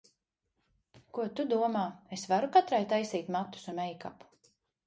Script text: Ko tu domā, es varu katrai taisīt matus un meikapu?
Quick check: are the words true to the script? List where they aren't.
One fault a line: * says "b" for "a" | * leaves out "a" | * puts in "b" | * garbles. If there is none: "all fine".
all fine